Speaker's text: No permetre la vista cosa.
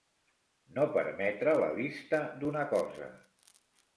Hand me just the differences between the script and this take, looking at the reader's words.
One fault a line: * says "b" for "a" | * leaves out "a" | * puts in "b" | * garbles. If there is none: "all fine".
* puts in "d'una"